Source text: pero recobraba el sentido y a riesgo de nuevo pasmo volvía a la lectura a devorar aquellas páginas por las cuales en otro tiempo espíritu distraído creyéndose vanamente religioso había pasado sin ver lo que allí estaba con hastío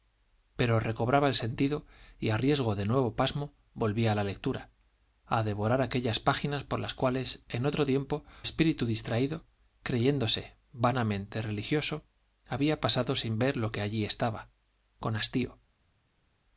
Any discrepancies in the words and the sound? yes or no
no